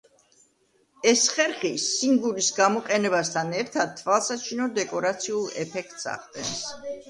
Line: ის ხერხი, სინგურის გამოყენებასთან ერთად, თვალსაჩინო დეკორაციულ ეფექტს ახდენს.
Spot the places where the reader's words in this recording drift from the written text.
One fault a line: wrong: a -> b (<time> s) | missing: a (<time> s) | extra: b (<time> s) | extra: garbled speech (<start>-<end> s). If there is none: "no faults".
wrong: ის -> ეს (1.1 s)